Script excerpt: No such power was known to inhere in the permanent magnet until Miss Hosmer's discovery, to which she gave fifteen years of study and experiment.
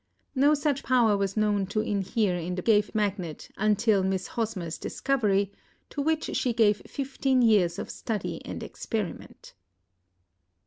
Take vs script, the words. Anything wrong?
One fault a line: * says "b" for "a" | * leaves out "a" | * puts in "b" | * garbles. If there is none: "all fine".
* says "gave" for "permanent"